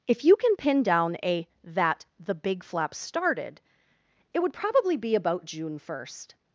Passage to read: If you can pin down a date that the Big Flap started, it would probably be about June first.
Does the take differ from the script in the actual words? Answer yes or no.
yes